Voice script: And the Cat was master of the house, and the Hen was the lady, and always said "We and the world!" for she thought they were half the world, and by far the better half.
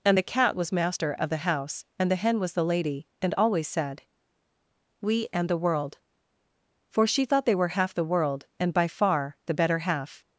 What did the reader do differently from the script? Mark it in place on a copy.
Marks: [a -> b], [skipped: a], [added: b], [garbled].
And the Cat was master of the house, and the Hen was the lady, and always said "We and the world!" for she thought they were half the world, and by far the better half.